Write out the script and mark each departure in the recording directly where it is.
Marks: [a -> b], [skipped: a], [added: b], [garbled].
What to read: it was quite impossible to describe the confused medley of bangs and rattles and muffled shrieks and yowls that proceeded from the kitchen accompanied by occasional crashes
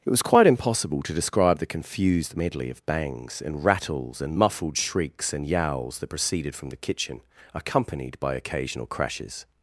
it was quite impossible to describe the confused medley of bangs and rattles and muffled shrieks and yowls that proceeded from the kitchen accompanied by occasional crashes